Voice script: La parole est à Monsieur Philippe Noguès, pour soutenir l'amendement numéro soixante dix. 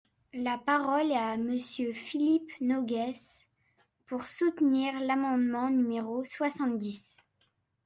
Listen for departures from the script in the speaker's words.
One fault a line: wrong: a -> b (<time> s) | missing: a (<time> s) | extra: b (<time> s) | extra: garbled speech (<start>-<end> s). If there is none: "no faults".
no faults